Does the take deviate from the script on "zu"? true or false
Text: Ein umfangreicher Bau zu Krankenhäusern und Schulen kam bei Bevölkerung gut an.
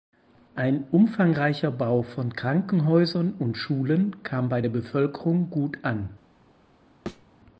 true